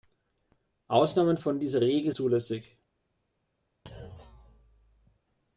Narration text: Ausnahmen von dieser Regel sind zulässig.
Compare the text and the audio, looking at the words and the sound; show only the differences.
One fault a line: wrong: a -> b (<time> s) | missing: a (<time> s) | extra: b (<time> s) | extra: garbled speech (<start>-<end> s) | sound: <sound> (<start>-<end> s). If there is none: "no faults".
missing: sind (2.1 s)
sound: thud (3.9-5.2 s)